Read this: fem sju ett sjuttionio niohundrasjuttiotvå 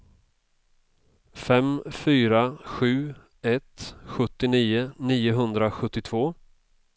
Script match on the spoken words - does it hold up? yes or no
no